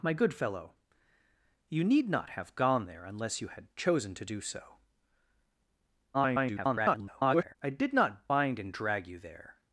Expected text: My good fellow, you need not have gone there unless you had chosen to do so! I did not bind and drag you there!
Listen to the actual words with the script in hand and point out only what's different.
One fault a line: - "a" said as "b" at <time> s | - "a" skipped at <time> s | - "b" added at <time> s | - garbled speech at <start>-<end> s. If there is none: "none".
- garbled speech at 6.1-7.6 s